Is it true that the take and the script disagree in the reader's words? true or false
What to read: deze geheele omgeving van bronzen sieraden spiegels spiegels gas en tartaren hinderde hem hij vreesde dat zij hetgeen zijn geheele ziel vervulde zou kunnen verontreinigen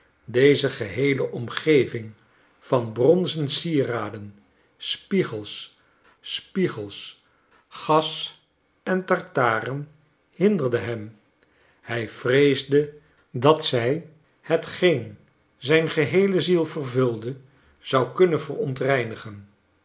false